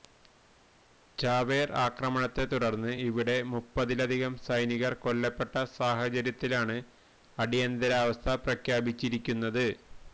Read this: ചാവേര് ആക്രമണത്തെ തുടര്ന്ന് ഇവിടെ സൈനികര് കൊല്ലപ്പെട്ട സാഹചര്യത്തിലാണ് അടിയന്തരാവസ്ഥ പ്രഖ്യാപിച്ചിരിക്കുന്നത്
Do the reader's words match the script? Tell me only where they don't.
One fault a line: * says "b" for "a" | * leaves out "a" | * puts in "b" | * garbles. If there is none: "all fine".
* puts in "മുപ്പതിലധികം"